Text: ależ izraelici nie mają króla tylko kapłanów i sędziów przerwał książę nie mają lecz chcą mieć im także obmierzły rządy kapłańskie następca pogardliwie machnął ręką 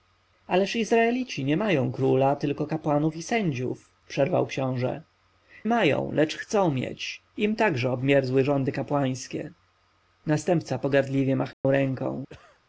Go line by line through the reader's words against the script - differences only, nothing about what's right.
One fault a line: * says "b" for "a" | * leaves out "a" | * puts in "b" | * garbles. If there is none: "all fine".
* leaves out "nie"